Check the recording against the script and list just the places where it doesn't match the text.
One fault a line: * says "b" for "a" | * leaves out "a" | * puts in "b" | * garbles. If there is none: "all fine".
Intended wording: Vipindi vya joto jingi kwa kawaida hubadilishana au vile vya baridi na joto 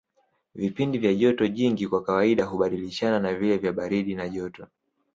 * says "na" for "au"